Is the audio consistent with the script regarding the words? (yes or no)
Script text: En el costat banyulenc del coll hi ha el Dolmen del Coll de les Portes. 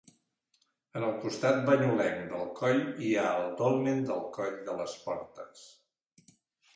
yes